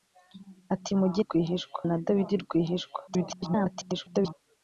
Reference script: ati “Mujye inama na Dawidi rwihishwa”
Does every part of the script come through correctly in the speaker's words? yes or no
no